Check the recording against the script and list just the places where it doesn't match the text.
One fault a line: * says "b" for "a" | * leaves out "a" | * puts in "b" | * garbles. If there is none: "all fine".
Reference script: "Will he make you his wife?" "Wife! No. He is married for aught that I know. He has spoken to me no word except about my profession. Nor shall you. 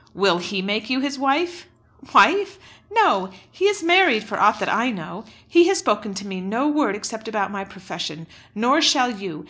all fine